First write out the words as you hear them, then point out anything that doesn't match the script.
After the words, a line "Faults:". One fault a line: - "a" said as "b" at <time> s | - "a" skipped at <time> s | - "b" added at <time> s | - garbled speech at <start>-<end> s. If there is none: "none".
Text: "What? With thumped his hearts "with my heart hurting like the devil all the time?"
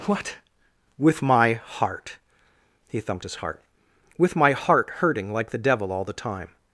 "What? With my heart" he thumped his heart "with my heart hurting like the devil all the time?"
Faults:
- "my heart he" added at 1.2 s
- "hearts" said as "heart" at 3.4 s